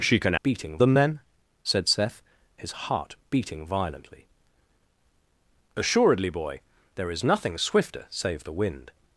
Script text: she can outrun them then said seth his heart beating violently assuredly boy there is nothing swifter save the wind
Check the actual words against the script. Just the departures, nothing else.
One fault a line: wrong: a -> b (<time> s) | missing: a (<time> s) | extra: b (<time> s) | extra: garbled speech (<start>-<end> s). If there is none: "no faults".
wrong: outrun -> beating (0.4 s)